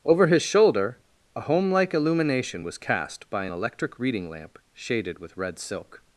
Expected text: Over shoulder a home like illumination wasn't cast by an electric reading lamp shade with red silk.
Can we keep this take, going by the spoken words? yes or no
no